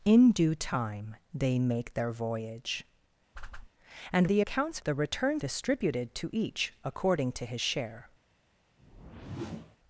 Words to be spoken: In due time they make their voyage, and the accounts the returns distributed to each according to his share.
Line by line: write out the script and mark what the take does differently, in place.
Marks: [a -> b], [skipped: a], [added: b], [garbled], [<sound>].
In due time they make their voyage, [whoosh] and the accounts the returns distributed to each according to his share. [whoosh]